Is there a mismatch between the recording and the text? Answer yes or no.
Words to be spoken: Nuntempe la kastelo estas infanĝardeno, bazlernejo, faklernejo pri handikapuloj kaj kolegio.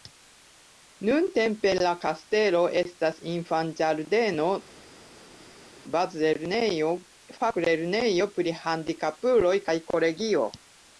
no